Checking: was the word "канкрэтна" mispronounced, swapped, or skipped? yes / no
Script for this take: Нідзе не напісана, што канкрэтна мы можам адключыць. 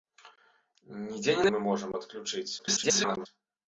yes